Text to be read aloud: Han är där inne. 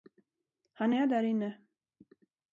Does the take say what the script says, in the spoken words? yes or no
yes